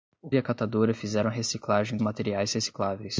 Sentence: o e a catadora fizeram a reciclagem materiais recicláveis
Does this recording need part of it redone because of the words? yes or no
no